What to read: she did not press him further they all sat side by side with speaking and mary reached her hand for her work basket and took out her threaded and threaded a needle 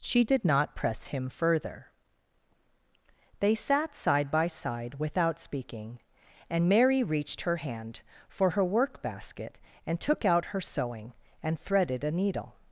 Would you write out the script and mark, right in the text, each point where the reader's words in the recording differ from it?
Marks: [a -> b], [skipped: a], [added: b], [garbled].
she did not press him further they [skipped: all] sat side by side [with -> without] speaking and mary reached her hand for her work basket and took out her [threaded -> sewing] and threaded a needle